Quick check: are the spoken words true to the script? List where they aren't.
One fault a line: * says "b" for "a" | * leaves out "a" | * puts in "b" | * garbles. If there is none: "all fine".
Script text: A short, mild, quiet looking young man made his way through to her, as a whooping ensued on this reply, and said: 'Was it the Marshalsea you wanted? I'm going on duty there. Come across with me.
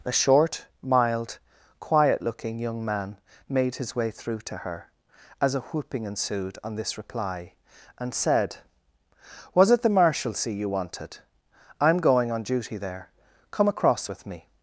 all fine